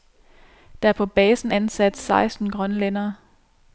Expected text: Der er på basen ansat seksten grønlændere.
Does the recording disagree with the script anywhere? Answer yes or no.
no